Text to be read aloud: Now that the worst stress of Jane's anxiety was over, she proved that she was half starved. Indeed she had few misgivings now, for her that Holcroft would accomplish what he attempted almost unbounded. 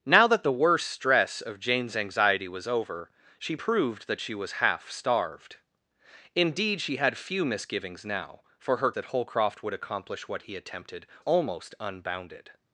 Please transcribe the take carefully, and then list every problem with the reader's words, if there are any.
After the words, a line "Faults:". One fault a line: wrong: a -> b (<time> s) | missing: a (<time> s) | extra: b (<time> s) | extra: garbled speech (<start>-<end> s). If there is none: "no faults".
Now that the worst stress of Jane's anxiety was over, she proved that she was half starved. Indeed she had few misgivings now, for her that Holcroft would accomplish what he attempted almost unbounded.
Faults:
no faults